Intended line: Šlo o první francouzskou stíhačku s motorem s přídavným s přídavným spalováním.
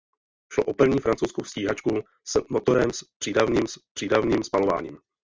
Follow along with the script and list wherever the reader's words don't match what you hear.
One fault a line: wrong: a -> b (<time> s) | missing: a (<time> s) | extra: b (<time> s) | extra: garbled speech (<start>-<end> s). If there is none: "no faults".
no faults